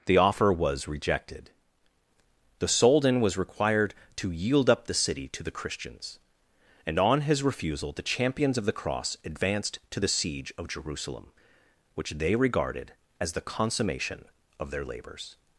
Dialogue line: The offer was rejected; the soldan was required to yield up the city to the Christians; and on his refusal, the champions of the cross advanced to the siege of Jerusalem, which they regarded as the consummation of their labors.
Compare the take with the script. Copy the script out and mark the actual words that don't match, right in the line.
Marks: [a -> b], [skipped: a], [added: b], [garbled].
The offer was rejected; the soldan was required to yield up the city to the Christians; and on his refusal, the champions of the cross advanced to the siege of Jerusalem, which they regarded as the consummation of their labors.